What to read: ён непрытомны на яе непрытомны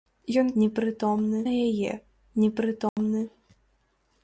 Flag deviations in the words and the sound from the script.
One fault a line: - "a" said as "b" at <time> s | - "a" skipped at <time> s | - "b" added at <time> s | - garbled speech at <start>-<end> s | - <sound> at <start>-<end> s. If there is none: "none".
- dropout at 2.9-3.0 s